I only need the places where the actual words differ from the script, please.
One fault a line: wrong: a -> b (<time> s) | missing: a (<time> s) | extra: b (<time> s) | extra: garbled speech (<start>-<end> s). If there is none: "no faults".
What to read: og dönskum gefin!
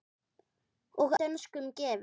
no faults